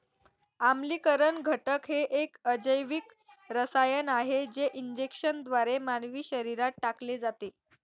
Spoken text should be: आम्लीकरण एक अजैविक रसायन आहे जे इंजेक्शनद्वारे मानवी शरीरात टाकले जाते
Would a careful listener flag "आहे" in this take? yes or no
no